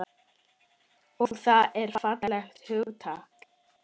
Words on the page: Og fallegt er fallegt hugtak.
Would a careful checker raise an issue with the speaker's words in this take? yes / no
yes